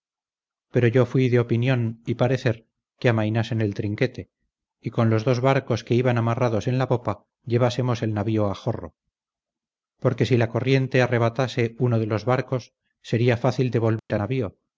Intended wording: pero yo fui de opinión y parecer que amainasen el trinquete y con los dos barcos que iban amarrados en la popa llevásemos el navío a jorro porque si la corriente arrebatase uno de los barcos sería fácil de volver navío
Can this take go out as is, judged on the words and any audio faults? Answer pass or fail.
fail